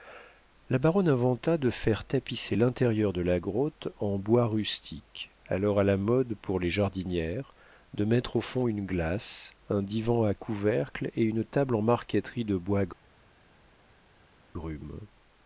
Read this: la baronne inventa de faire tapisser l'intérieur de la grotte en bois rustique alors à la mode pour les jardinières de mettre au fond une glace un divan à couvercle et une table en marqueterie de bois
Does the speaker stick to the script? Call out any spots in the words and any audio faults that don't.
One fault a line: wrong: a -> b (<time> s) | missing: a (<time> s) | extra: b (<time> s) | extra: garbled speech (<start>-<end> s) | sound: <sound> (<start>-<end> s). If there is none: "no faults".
no faults